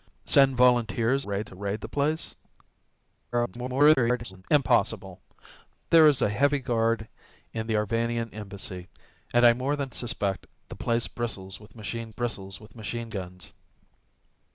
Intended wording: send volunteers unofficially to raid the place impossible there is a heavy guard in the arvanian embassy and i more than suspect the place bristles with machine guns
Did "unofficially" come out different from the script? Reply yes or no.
yes